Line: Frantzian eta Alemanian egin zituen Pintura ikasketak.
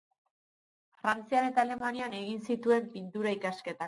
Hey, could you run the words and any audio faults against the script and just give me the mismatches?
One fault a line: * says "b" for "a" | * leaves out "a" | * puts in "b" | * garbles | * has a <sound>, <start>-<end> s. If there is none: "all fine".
all fine